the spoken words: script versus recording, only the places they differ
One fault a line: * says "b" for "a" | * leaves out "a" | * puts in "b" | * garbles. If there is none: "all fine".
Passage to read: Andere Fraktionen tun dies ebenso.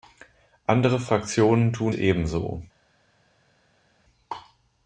* leaves out "dies"